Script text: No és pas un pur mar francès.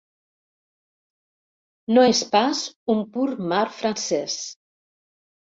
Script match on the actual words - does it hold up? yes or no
yes